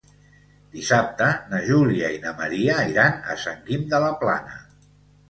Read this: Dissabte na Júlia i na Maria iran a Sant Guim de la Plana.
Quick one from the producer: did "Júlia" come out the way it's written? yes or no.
yes